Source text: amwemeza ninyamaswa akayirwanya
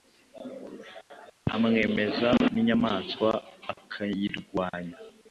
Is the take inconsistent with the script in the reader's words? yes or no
no